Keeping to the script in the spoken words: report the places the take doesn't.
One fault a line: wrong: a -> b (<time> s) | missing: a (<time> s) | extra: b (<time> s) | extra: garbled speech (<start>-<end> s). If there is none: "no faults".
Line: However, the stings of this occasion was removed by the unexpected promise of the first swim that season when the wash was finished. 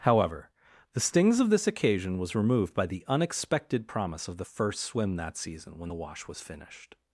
no faults